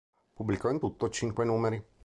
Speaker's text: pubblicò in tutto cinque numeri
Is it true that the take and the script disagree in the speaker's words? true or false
false